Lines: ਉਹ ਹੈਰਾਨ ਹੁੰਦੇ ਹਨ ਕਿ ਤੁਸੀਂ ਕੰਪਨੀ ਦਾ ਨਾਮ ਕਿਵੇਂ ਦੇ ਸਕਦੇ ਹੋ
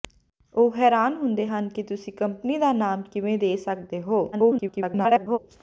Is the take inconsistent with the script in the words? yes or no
yes